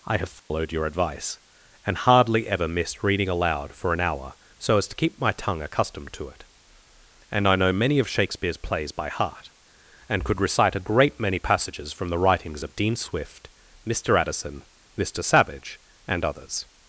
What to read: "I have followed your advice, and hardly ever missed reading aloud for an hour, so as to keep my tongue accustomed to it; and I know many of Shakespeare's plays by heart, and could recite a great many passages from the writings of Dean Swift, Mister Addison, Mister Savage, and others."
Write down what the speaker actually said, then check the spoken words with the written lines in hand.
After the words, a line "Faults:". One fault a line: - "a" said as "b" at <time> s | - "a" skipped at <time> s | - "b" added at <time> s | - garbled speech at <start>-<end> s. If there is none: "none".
"I have followed your advice, and hardly ever missed reading aloud for an hour, so as to keep my tongue accustomed to it; and I know many of Shakespeare's plays by heart, and could recite a great many passages from the writings of Dean Swift, Mister Addison, Mister Savage, and others."
Faults:
none